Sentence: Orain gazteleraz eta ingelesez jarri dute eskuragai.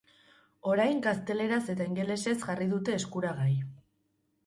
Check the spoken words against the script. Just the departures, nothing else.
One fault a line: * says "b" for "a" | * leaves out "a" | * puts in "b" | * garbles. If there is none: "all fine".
all fine